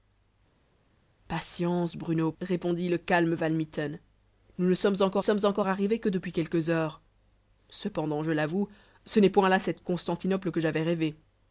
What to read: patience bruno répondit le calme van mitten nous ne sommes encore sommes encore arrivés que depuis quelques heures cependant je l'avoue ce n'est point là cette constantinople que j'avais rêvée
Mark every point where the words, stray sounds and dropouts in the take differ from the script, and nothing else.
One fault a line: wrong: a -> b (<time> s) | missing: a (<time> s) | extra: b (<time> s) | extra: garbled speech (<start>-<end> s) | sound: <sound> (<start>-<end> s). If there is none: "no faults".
no faults